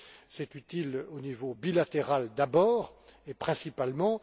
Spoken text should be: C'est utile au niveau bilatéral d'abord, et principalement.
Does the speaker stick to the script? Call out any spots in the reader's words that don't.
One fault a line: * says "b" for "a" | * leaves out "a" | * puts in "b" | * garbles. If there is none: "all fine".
all fine